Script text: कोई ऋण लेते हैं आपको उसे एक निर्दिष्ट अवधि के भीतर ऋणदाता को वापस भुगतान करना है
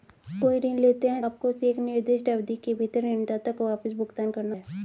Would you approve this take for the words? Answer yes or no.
yes